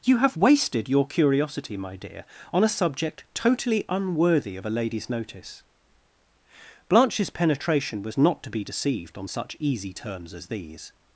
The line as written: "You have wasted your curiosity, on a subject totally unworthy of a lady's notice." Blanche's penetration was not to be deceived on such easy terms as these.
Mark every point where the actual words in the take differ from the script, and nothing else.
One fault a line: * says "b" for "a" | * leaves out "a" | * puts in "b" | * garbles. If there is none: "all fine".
* puts in "my dear"